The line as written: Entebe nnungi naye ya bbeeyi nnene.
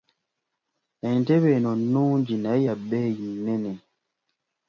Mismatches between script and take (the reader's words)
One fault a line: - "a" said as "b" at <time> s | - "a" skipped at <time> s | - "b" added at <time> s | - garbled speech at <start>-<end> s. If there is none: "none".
- "eno" added at 1.6 s